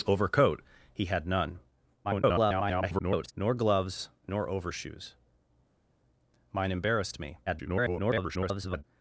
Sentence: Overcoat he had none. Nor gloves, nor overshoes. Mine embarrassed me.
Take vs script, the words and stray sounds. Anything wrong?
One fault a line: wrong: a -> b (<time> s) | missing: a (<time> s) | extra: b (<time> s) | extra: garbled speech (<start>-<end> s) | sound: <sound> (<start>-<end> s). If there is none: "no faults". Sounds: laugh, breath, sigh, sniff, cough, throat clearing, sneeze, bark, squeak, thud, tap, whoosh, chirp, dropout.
extra: garbled speech (2.0-3.3 s)
extra: garbled speech (7.5-8.8 s)